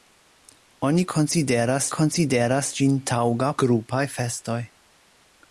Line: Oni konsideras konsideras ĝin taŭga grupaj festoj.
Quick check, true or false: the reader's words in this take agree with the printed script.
true